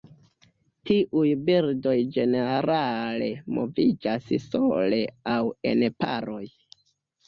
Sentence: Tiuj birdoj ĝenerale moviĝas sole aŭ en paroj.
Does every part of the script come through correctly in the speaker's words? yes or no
yes